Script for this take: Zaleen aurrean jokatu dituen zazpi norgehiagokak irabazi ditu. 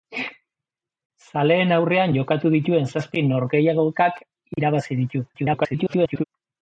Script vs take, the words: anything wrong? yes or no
yes